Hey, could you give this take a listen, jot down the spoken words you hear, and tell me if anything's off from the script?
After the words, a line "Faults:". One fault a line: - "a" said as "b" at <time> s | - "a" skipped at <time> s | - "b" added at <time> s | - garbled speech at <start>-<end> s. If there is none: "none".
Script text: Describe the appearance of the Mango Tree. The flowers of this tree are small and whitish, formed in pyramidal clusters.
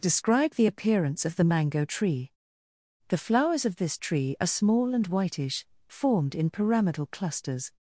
Describe the appearance of the Mango Tree. The flowers of this tree are small and whitish, formed in pyramidal clusters.
Faults:
none